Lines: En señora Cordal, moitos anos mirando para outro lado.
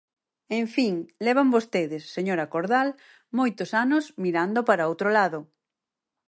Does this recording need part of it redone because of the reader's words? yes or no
yes